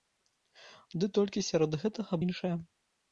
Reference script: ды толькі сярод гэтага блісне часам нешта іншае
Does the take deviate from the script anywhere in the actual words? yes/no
yes